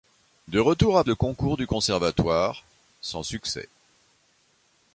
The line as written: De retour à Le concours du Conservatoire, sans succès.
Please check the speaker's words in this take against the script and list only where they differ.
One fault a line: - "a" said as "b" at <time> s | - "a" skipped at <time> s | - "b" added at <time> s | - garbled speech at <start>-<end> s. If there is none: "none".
none